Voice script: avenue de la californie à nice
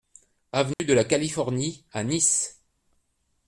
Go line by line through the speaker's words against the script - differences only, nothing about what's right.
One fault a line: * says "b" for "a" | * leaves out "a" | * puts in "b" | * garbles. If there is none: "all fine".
all fine